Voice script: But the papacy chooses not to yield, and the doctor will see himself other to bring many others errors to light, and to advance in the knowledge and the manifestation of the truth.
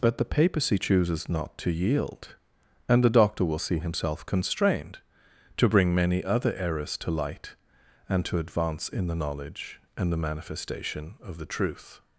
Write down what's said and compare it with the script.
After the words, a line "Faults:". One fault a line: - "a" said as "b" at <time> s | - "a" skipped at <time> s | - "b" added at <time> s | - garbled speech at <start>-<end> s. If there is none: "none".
But the papacy chooses not to yield, and the doctor will see himself constrained to bring many other errors to light, and to advance in the knowledge and the manifestation of the truth.
Faults:
- "other" said as "constrained" at 4.2 s
- "others" said as "other" at 6.2 s